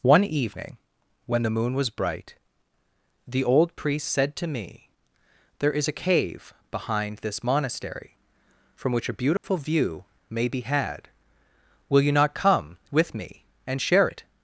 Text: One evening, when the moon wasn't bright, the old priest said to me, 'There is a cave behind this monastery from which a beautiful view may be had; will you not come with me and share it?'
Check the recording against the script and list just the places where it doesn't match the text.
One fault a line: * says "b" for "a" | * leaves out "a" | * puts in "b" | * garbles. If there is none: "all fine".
* says "was" for "wasn't"